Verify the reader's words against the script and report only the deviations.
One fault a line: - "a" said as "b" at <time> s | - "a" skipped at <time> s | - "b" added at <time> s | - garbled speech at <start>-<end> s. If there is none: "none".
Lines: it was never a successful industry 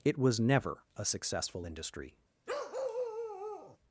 none